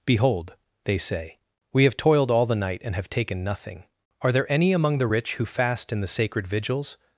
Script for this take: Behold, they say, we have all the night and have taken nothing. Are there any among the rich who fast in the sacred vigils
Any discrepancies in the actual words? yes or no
yes